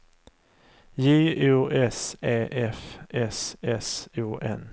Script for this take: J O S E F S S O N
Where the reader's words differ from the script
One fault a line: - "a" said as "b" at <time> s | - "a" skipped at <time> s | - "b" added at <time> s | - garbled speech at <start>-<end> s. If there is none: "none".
none